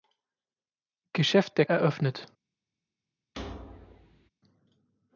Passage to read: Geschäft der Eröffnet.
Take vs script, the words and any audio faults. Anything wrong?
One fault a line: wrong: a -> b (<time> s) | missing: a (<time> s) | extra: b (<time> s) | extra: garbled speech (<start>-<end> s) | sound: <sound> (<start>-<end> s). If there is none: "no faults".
sound: thud (3.3-4.3 s)